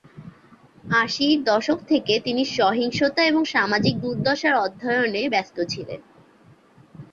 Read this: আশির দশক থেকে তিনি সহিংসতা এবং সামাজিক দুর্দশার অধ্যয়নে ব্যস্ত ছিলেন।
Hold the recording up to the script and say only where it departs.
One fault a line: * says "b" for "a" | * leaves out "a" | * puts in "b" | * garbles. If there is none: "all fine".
all fine